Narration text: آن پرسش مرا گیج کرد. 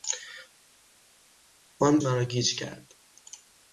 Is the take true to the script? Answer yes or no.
no